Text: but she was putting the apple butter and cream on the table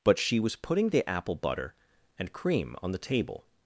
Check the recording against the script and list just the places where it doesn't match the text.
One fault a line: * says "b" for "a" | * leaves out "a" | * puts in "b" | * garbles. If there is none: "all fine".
all fine